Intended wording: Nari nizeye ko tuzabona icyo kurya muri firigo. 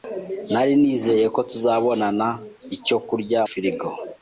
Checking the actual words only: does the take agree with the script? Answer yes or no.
no